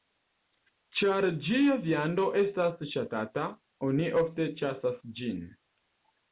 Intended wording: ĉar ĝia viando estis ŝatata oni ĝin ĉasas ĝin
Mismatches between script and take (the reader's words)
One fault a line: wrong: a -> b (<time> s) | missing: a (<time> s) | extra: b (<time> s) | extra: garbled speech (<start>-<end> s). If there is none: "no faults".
wrong: estis -> estas (2.4 s)
wrong: ĝin -> ofte (4.2 s)